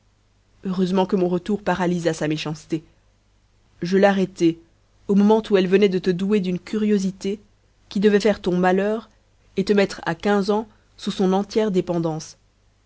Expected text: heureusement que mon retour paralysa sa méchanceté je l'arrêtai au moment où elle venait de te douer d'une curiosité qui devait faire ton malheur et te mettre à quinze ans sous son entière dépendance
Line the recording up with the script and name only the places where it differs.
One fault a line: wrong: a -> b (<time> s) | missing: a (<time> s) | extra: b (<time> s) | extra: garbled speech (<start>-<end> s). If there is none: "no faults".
no faults